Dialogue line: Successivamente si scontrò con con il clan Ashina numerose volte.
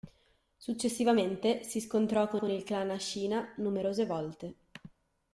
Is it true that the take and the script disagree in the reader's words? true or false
false